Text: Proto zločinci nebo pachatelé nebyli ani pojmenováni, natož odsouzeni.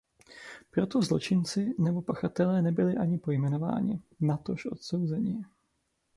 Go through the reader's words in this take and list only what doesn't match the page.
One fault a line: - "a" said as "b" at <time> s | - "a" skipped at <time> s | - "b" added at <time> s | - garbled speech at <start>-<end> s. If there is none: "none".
none